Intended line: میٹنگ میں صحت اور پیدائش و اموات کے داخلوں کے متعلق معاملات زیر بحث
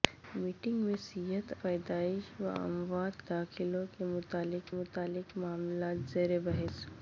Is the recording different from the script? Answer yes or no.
yes